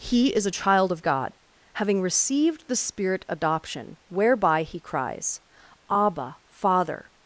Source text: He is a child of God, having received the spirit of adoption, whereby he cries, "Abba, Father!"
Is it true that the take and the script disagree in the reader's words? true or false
true